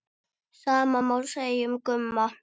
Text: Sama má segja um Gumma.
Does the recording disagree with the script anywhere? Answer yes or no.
no